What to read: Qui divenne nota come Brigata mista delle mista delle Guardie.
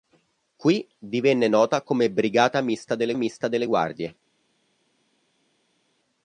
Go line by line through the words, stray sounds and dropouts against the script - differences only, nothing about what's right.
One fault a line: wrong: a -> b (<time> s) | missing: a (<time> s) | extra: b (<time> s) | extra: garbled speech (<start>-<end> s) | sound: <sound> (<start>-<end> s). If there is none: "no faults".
no faults